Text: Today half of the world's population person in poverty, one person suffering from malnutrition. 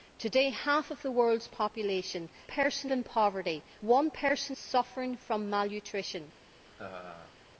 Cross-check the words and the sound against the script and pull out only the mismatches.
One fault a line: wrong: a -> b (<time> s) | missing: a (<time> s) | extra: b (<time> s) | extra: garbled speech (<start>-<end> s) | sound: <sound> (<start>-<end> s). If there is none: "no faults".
sound: laugh (6.6-7.4 s)